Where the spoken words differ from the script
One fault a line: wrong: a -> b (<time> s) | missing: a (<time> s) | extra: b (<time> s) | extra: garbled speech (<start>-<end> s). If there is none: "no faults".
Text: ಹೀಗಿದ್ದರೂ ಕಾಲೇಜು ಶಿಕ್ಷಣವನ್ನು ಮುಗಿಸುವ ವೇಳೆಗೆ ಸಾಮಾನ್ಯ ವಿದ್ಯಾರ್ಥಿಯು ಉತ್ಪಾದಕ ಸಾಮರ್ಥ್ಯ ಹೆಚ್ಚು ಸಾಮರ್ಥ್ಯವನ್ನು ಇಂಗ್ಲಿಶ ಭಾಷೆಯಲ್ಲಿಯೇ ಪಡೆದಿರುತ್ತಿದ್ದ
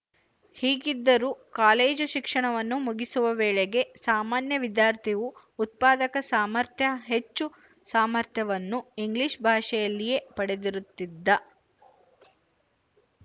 no faults